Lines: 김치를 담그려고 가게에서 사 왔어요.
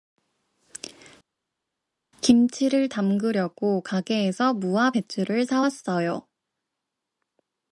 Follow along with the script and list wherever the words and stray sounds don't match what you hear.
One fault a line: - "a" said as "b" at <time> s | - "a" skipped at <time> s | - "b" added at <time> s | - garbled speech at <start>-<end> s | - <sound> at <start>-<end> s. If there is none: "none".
- "무와 배추를" added at 4.5 s